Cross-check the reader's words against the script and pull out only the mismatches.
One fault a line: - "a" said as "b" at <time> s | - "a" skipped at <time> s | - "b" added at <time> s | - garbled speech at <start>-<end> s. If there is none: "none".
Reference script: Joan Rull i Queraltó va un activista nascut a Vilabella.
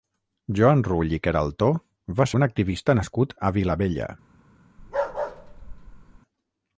none